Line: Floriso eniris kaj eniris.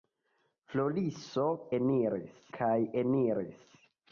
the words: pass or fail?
pass